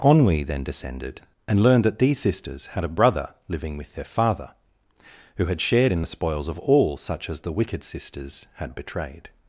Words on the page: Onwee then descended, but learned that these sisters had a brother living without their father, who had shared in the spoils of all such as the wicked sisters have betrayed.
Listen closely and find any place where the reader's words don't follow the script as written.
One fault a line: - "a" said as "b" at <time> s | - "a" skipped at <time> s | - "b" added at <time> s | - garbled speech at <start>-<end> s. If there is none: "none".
- "but" said as "and" at 1.5 s
- "without" said as "with" at 3.8 s
- "have" said as "had" at 8.5 s